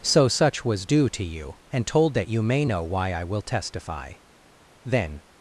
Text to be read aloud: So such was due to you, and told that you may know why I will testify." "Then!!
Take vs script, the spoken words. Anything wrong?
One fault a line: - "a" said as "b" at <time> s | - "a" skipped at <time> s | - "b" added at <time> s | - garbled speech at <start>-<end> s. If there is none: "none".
none